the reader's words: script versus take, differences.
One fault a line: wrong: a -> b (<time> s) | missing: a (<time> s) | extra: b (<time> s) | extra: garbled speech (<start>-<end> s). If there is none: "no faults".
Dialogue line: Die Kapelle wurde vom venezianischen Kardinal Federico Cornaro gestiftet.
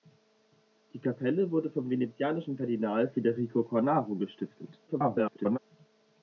extra: garbled speech (4.9-5.6 s)